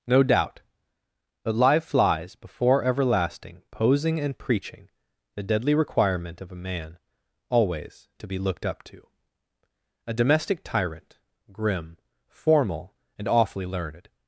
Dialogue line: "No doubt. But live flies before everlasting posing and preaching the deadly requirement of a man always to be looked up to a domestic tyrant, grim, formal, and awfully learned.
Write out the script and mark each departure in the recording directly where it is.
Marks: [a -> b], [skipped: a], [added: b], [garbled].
"No doubt. But live flies before everlasting posing and preaching the deadly requirement of a man always to be looked up to a domestic tyrant, grim, formal, and awfully learned.